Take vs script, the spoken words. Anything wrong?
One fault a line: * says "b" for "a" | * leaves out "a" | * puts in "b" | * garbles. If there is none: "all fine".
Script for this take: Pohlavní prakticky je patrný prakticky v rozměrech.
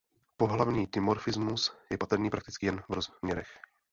* says "dimorfismus" for "prakticky"
* puts in "jen"